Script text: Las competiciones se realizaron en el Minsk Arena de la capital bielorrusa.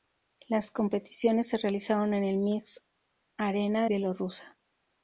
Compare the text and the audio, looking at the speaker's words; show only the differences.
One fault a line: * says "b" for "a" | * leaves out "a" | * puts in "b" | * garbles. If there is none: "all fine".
* leaves out "de la capital"